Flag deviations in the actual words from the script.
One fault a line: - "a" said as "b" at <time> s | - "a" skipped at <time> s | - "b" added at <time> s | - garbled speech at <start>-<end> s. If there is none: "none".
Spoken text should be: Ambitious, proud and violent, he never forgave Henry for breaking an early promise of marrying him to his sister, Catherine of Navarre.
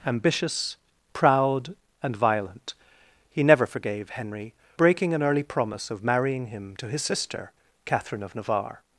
- "for" skipped at 4.5 s